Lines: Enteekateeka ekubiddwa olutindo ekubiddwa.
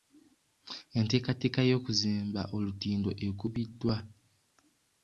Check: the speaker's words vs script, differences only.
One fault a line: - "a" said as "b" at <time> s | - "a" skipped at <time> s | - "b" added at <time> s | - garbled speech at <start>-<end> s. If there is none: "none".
- "ekubiddwa" said as "y'okuzimba" at 1.7 s